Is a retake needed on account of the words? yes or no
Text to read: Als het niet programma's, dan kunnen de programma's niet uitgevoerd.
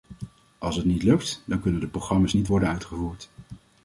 yes